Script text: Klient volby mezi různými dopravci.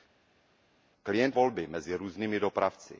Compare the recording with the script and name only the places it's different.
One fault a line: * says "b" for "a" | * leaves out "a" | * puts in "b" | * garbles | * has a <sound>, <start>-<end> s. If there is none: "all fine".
all fine